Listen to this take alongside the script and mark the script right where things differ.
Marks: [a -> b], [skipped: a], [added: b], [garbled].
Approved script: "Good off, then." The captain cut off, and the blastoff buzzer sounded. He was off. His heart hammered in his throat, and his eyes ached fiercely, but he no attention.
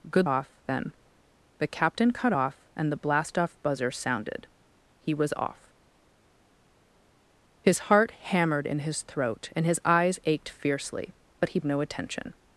"Good off, then." The captain cut off, and the blastoff buzzer sounded. He was off. His heart hammered in his throat, and his eyes ached fiercely, but he no attention.